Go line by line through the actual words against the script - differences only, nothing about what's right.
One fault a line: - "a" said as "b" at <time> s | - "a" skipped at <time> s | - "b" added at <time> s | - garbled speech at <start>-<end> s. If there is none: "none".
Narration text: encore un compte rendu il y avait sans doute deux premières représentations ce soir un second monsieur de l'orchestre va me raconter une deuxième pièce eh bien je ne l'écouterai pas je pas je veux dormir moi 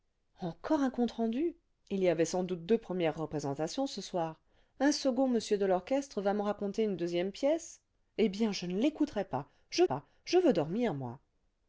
none